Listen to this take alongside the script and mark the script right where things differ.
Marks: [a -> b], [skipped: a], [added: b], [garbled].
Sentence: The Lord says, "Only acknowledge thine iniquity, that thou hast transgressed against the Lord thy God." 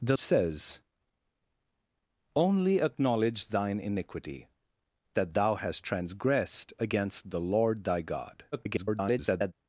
The [skipped: Lord] says, "Only acknowledge thine iniquity, that thou hast transgressed against the Lord thy God." [garbled]